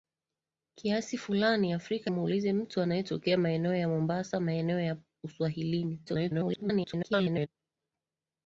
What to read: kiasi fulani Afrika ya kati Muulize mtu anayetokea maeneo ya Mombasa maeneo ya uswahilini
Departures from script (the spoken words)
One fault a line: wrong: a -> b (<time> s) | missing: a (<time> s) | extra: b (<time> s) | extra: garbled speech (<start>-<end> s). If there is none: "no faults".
missing: ya kati (2.1 s)
extra: garbled speech (6.1-7.5 s)